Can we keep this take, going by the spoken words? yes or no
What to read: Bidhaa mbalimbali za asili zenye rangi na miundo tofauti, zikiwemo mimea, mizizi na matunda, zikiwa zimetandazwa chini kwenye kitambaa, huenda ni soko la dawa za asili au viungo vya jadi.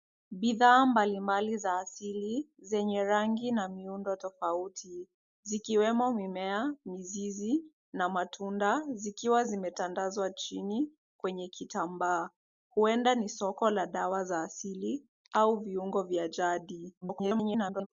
no